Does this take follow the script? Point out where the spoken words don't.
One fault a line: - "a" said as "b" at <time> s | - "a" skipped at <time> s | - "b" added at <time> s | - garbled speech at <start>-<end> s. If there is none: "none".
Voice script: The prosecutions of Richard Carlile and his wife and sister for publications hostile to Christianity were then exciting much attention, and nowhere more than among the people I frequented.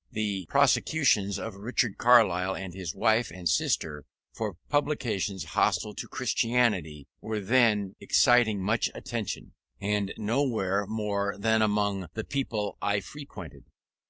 none